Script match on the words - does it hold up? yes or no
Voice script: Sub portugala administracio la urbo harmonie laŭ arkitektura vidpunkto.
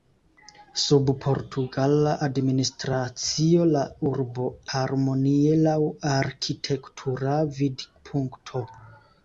yes